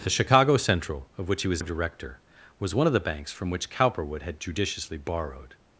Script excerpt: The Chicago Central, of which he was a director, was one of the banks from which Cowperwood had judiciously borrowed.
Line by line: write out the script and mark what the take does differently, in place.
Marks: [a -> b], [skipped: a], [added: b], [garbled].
The Chicago Central, of which he was a director, was one of the banks from which Cowperwood had judiciously borrowed.